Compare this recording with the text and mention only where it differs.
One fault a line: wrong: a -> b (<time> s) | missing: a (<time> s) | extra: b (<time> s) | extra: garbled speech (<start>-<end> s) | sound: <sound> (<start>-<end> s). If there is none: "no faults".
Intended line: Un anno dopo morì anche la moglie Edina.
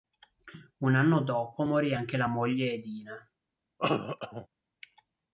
sound: cough (3.8-4.5 s)